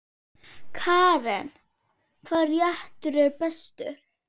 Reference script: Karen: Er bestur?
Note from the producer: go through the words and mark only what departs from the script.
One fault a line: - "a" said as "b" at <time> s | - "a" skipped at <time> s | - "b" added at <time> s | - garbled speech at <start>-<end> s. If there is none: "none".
- "Hvaða réttur" added at 2.3 s